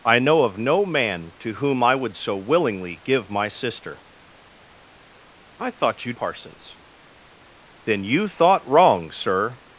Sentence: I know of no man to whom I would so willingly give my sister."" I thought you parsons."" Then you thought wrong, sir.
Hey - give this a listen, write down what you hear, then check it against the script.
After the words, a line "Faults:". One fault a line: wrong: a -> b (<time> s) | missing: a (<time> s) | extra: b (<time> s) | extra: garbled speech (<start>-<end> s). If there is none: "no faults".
I know of no man to whom I would so willingly give my sister."" I thought you parsons."" Then you thought wrong, sir.
Faults:
no faults